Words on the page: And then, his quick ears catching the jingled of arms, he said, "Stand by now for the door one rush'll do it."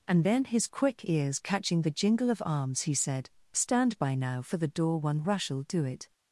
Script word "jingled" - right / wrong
wrong